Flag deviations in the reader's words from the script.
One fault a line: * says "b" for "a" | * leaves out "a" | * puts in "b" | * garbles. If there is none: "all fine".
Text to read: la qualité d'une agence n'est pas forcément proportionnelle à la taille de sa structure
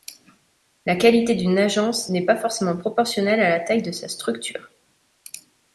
all fine